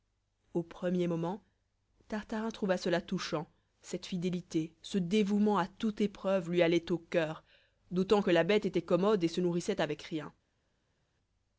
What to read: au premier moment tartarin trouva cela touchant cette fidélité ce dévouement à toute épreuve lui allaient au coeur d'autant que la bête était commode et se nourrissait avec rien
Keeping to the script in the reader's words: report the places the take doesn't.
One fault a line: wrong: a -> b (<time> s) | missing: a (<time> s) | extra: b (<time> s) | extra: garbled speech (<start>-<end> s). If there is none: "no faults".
no faults